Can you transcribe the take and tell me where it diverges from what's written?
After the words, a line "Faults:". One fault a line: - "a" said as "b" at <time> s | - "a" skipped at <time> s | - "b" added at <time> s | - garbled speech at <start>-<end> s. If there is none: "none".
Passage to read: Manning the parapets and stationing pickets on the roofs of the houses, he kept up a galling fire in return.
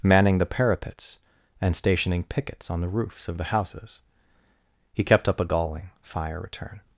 Manning the parapets and stationing pickets on the roofs of the houses, he kept up a galling fire return.
Faults:
- "in" skipped at 6.4 s